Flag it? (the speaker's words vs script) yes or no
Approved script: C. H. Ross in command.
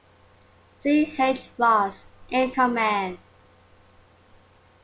no